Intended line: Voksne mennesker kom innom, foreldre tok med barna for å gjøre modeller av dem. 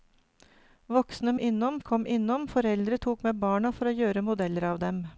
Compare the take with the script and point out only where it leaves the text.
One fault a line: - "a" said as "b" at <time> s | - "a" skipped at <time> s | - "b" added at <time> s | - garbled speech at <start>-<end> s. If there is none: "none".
- "mennesker" said as "innom" at 1.4 s